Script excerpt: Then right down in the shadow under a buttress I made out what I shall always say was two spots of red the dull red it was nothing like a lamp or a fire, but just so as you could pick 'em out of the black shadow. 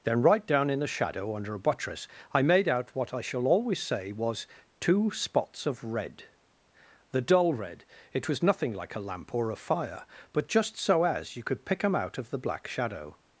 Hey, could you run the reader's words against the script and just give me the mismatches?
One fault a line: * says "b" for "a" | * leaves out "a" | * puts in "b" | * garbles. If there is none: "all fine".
all fine